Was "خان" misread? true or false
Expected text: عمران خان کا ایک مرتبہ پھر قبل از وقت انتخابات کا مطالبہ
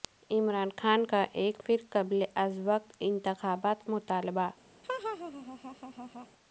false